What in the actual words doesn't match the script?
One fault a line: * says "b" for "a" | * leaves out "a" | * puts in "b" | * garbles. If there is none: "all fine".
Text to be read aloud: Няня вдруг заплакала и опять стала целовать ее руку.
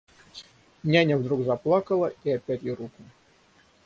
* leaves out "стала целовать"